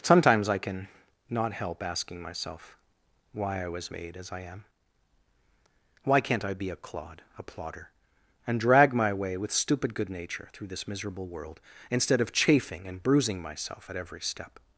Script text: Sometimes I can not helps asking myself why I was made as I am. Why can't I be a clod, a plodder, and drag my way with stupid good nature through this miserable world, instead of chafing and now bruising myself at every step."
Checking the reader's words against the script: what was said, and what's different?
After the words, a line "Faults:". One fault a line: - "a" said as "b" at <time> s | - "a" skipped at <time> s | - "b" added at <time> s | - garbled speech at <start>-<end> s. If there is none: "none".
Sometimes I can not help asking myself why I was made as I am. Why can't I be a clod, a plodder, and drag my way with stupid good nature through this miserable world, instead of chafing and bruising myself at every step."
Faults:
- "helps" said as "help" at 1.5 s
- "now" skipped at 13.0 s